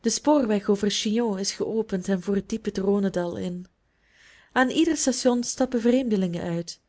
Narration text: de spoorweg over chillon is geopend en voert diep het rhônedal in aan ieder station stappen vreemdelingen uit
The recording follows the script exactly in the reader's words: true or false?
true